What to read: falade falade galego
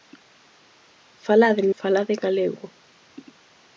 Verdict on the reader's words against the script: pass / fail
pass